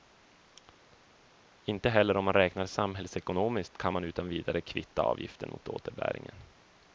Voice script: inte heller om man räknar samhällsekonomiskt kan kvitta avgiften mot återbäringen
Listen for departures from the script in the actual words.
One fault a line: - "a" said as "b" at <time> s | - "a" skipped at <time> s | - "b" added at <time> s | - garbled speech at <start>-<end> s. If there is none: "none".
- "man utan vidare" added at 3.9 s